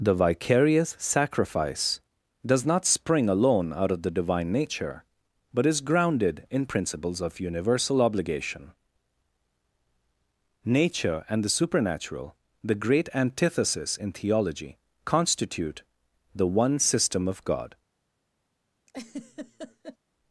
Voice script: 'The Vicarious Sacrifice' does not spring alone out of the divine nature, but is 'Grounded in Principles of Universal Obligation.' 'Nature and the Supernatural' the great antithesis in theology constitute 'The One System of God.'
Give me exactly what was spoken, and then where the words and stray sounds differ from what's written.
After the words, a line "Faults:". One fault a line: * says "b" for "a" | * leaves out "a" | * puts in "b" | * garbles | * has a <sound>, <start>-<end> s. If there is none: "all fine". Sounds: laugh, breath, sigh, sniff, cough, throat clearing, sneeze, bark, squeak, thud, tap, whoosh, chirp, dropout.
'The Vicarious Sacrifice' does not spring alone out of the divine nature, but is 'Grounded in Principles of Universal Obligation.' 'Nature and the Supernatural' the great antithesis in theology constitute 'The One System of God.'
Faults:
* has a laugh, 18.9-20.0 s